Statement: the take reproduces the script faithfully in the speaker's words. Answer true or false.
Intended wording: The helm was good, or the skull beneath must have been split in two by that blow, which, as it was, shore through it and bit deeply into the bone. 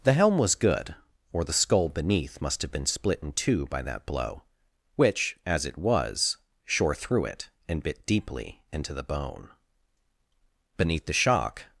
false